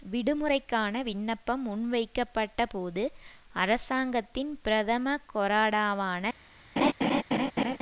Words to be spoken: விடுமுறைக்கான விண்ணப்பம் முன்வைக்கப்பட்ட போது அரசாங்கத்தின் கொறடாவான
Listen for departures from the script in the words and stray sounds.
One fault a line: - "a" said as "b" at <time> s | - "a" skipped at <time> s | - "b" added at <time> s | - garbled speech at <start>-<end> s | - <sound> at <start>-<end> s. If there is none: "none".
- "பிரதம" added at 4.6 s
- laugh at 6.8-7.8 s